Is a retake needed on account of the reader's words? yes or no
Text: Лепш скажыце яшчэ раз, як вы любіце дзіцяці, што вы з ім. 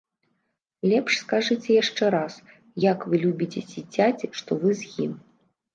no